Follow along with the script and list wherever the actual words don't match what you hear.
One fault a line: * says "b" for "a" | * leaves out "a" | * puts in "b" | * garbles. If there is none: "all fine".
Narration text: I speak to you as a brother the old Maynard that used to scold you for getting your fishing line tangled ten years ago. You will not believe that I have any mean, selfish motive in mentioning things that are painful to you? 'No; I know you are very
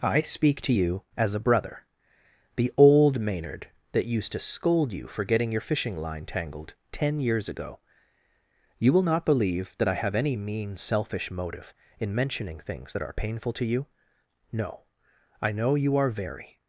all fine